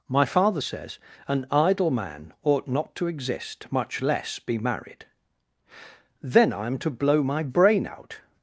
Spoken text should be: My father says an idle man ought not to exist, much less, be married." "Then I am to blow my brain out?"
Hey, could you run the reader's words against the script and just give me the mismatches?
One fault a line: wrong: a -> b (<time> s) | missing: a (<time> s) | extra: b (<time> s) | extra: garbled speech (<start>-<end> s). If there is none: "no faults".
no faults